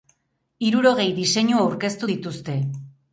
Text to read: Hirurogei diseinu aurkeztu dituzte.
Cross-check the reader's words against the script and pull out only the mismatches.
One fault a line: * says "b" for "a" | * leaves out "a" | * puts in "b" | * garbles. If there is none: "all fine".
all fine